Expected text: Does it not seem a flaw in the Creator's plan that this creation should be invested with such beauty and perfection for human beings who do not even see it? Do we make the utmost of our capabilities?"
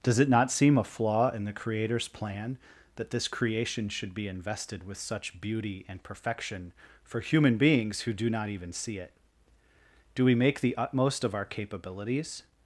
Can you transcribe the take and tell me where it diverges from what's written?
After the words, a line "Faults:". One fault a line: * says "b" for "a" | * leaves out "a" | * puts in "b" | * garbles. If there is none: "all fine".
Does it not seem a flaw in the Creator's plan that this creation should be invested with such beauty and perfection for human beings who do not even see it? Do we make the utmost of our capabilities?"
Faults:
all fine